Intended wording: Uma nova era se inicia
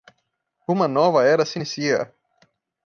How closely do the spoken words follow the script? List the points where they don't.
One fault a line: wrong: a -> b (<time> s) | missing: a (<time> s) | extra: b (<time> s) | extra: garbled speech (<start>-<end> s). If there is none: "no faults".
no faults